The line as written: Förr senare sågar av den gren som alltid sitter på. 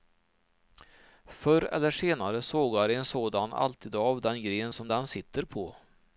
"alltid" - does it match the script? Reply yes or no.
no